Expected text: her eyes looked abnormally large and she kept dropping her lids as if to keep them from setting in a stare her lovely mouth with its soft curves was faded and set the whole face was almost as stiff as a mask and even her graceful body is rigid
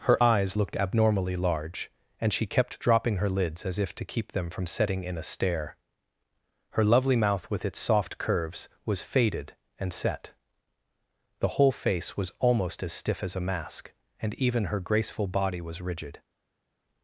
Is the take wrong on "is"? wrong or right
wrong